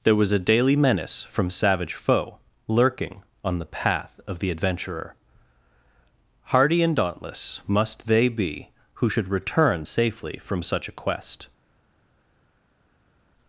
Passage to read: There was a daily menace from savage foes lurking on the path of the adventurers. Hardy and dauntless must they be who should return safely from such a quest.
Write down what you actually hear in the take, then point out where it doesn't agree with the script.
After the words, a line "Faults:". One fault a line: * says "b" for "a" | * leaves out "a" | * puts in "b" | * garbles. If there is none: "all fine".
There was a daily menace from savage foe lurking on the path of the adventurer. Hardy and dauntless must they be who should return safely from such a quest.
Faults:
* says "foe" for "foes"
* says "adventurer" for "adventurers"